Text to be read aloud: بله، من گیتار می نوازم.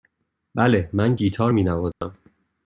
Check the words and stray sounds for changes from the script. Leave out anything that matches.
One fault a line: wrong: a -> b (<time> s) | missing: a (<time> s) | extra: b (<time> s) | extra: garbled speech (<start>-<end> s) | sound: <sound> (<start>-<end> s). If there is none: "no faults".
sound: dropout (1.9-2.0 s)